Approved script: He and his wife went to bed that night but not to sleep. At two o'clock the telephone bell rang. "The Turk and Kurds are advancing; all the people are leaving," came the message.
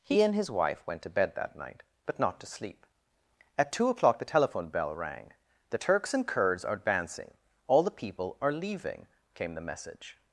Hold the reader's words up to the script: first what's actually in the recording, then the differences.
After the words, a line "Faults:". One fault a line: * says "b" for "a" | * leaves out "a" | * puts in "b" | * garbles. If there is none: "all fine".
He and his wife went to bed that night but not to sleep. At two o'clock the telephone bell rang. "The Turks and Kurds are advancing; all the people are leaving," came the message.
Faults:
* says "Turks" for "Turk"